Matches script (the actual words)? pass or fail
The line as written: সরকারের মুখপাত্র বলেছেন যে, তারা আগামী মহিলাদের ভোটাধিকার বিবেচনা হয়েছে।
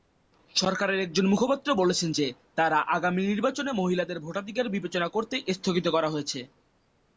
fail